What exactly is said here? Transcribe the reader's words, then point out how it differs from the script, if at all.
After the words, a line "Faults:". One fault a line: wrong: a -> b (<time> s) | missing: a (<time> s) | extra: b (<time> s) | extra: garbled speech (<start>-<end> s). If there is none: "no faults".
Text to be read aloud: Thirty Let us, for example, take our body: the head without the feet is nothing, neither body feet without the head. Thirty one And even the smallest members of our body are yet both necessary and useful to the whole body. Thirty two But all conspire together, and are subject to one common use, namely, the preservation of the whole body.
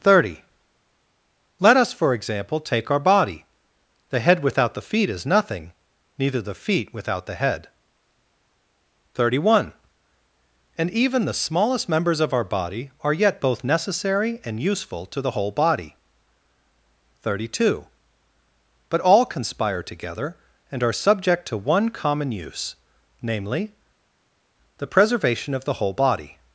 Thirty Let us, for example, take our body: the head without the feet is nothing, neither the feet without the head. Thirty one And even the smallest members of our body are yet both necessary and useful to the whole body. Thirty two But all conspire together, and are subject to one common use, namely, the preservation of the whole body.
Faults:
wrong: body -> the (6.4 s)